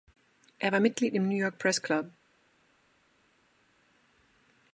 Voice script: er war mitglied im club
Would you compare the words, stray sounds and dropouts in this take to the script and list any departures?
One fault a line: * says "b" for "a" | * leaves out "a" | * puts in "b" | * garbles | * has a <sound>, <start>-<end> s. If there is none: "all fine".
* puts in "new york press"